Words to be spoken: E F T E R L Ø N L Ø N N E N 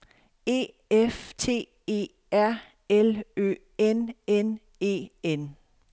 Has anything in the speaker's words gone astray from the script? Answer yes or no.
yes